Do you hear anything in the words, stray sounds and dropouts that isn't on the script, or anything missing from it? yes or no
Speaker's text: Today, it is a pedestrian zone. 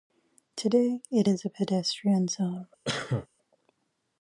yes